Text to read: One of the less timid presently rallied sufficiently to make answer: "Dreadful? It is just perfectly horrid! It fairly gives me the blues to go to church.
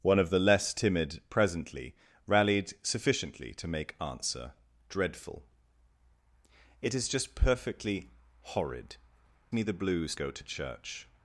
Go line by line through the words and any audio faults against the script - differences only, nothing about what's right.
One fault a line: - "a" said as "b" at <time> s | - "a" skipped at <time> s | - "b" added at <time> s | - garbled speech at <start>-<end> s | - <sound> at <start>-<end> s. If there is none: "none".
- "It fairly gives" skipped at 8.9 s
- "to" skipped at 10.1 s